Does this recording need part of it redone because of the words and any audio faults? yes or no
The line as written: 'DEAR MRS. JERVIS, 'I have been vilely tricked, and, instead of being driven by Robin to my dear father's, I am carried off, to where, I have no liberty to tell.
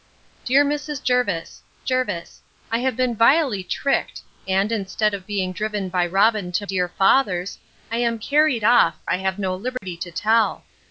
yes